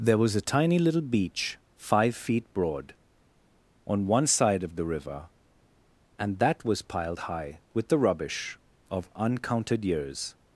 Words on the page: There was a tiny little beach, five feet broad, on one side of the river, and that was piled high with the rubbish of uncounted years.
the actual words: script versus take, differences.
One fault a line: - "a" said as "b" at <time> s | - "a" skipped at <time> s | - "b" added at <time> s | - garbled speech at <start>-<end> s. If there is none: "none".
none